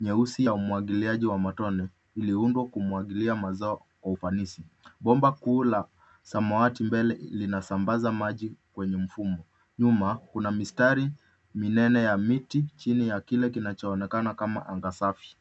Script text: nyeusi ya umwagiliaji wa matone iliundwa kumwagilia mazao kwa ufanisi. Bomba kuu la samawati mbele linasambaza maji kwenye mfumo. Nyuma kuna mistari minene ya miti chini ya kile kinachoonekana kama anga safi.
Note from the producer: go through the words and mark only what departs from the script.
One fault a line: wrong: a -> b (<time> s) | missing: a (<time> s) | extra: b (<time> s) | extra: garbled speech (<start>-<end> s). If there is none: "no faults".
no faults